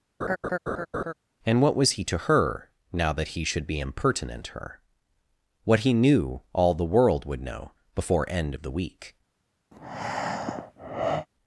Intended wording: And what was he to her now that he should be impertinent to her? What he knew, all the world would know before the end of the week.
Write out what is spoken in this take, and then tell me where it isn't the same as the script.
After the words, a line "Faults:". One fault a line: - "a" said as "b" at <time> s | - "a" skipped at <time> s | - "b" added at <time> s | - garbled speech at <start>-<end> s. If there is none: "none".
And what was he to her now that he should be impertinent her? What he knew, all the world would know before end of the week.
Faults:
- "to" skipped at 4.5 s
- "the" skipped at 8.3 s